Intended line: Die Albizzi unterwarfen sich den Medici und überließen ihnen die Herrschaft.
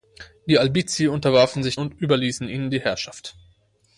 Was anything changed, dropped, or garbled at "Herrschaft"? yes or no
no